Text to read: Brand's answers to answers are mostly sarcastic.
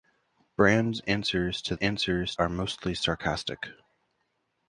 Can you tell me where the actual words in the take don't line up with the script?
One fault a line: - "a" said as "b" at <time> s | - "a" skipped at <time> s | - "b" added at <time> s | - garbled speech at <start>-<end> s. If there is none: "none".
none